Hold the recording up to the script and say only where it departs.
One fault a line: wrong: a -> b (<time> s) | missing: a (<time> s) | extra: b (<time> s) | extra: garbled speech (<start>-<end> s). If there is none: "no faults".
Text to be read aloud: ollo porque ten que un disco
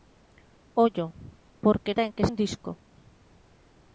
no faults